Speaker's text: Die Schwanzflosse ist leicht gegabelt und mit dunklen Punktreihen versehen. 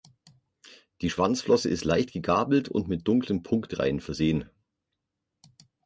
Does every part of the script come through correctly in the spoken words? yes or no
yes